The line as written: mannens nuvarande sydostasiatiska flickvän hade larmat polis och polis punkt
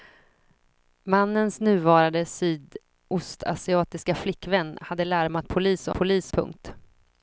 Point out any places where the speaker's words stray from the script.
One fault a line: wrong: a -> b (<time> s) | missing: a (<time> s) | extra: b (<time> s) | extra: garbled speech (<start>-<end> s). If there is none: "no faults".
no faults